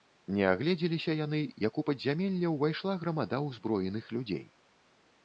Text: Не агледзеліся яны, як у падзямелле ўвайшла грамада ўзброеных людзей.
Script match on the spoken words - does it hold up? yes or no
yes